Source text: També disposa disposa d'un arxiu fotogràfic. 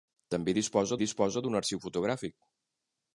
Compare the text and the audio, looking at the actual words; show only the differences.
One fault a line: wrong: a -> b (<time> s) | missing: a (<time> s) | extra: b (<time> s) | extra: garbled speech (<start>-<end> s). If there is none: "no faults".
no faults